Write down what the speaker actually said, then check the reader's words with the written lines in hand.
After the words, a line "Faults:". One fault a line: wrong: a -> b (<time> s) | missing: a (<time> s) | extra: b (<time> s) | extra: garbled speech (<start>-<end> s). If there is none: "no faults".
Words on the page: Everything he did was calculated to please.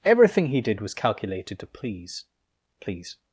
Everything he did was calculated to please please.
Faults:
extra: please (2.8 s)